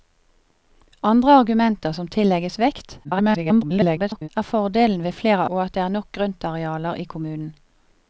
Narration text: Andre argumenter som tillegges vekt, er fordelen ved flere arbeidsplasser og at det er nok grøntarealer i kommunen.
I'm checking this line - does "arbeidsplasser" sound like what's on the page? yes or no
no